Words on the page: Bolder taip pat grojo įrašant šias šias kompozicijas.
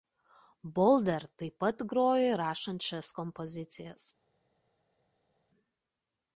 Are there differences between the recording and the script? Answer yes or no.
yes